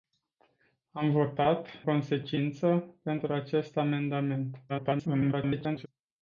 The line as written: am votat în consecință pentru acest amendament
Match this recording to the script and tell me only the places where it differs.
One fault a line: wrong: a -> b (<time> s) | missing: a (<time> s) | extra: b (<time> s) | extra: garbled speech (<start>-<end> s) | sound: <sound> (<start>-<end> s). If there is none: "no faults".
missing: în (1.7 s)
extra: garbled speech (4.7-5.9 s)